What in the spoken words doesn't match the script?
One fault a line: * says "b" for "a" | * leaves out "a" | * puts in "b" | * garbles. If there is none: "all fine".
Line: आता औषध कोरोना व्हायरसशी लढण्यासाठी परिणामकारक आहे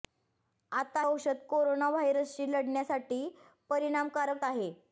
all fine